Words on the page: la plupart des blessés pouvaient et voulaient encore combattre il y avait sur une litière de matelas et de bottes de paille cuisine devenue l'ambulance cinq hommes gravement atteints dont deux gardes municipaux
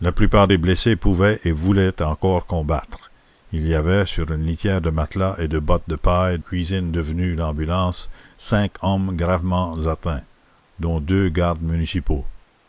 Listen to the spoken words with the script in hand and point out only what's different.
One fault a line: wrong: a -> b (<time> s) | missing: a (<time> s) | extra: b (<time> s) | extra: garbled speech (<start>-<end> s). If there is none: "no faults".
no faults